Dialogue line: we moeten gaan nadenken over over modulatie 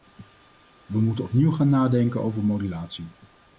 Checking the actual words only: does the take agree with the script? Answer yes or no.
no